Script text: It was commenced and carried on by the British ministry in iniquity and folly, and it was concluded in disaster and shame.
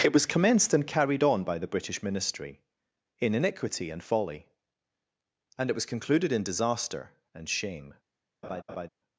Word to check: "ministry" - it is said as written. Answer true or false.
true